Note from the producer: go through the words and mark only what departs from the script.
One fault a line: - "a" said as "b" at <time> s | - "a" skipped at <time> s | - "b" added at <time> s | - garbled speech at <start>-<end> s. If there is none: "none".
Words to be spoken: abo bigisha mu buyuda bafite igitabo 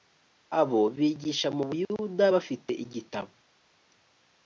none